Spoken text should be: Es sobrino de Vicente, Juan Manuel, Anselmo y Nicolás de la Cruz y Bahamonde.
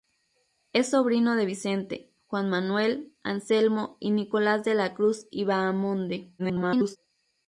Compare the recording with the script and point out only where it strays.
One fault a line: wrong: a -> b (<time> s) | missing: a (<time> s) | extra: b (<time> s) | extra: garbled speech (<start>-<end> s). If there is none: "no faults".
extra: garbled speech (6.4-7.0 s)